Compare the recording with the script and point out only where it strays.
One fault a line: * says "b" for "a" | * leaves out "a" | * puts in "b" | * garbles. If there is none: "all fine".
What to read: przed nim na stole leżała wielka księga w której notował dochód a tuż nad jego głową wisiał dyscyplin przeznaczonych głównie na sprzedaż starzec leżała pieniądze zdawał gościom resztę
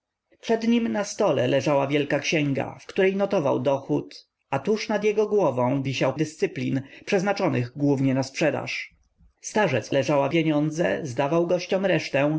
all fine